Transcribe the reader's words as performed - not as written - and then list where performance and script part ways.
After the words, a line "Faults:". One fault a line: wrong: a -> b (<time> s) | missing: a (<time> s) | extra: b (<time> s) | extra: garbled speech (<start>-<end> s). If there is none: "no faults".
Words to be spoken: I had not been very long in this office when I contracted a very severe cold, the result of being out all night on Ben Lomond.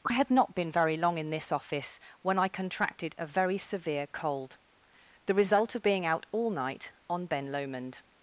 I had not been very long in this office when I contracted a very severe cold, the result of being out all night on Ben Lomond.
Faults:
no faults